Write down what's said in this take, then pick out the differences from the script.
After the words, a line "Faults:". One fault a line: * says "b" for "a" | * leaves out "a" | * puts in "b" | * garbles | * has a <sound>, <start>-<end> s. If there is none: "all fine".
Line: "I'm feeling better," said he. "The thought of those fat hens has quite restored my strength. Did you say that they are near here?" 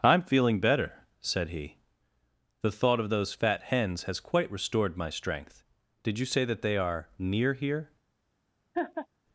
"I'm feeling better," said he. "The thought of those fat hens has quite restored my strength. Did you say that they are near here?"
Faults:
* has a laugh, 8.7-9.1 s